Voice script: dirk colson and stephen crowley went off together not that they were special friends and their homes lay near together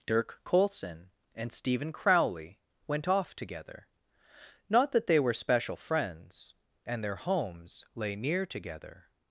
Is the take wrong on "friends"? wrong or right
right